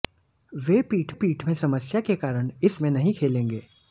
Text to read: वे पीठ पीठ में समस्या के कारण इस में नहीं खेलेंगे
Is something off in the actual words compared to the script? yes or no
no